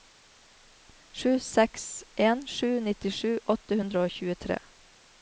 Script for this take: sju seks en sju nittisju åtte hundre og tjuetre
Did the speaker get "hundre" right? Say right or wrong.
right